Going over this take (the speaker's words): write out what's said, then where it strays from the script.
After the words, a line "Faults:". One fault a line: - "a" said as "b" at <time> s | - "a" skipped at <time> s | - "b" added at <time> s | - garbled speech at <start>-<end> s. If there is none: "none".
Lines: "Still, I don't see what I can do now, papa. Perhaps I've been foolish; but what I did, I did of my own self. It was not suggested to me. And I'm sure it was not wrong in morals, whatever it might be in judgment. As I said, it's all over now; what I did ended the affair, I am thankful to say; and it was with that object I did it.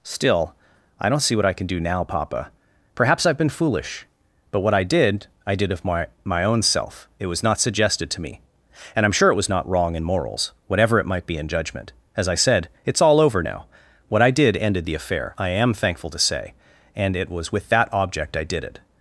"Still, I don't see what I can do now, papa. Perhaps I've been foolish; but what I did, I did of my my own self. It was not suggested to me. And I'm sure it was not wrong in morals, whatever it might be in judgment. As I said, it's all over now; what I did ended the affair, I am thankful to say; and it was with that object I did it.
Faults:
- "my" added at 6.2 s